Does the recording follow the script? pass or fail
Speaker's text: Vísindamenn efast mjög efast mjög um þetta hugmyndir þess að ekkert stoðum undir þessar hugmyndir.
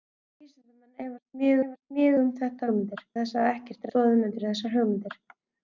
pass